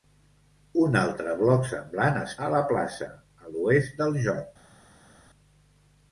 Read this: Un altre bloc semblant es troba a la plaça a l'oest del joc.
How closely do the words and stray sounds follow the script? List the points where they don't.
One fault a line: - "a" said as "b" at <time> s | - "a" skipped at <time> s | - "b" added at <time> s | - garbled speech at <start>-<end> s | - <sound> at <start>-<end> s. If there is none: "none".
- "troba" skipped at 2.3 s